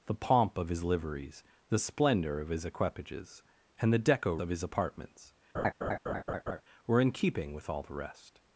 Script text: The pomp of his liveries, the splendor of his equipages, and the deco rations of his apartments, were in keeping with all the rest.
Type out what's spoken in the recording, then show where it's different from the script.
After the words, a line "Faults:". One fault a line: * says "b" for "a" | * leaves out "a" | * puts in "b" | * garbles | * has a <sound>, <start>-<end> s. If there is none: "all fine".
The pomp of his liveries, the splendor of his equipages, and the deco of his apartments, were in keeping with all the rest.
Faults:
* leaves out "rations"
* has a laugh, 5.5-6.6 s